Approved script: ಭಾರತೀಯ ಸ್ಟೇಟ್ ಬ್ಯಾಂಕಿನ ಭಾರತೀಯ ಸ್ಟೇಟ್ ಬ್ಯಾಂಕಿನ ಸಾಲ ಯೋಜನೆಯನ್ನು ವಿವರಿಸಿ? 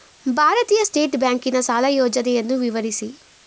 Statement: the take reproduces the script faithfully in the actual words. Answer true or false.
false